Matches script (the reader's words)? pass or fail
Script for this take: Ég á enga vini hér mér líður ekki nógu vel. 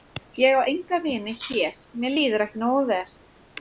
pass